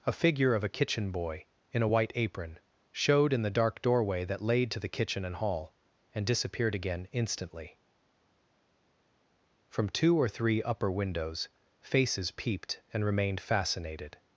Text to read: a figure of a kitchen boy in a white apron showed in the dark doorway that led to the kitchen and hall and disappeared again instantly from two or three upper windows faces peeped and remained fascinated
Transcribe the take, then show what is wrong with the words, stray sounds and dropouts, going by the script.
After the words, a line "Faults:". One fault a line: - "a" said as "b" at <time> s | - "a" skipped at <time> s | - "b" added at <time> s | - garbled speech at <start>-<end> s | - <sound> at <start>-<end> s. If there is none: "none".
a figure of a kitchen boy in a white apron showed in the dark doorway that laid to the kitchen and hall and disappeared again instantly from two or three upper windows faces peeped and remained fascinated
Faults:
- "led" said as "laid" at 4.4 s